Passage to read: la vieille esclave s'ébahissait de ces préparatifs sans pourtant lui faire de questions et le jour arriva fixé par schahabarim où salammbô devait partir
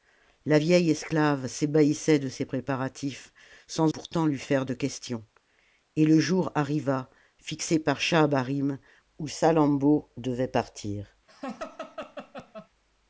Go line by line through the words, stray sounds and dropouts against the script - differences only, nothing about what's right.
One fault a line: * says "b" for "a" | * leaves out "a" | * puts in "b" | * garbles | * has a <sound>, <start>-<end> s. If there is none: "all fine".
* has a laugh, 11.3-12.7 s